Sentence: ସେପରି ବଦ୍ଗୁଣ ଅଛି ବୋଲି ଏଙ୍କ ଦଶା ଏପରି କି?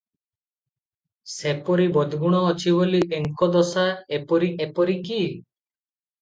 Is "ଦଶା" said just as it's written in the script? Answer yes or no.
yes